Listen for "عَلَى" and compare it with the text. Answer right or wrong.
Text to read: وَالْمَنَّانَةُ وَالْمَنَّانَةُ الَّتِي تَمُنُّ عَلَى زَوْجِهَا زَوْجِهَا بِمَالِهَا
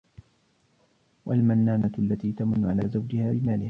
right